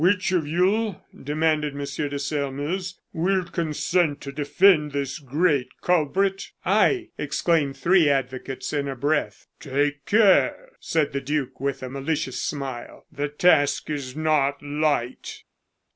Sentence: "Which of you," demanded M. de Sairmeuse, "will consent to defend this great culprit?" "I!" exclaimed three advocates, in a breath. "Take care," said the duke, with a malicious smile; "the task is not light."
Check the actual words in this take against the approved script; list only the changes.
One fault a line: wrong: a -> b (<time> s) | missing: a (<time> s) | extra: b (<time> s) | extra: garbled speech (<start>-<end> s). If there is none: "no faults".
no faults